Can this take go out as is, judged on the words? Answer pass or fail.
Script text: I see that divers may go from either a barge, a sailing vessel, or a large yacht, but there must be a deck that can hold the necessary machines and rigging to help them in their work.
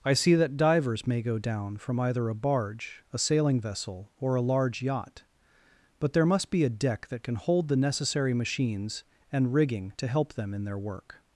fail